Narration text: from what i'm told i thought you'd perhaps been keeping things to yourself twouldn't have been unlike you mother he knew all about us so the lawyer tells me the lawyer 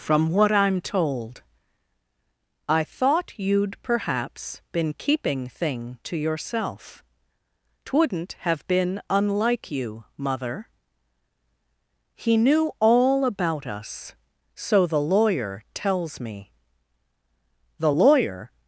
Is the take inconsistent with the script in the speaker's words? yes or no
yes